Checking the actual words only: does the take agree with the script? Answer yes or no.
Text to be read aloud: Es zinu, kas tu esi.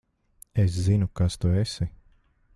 yes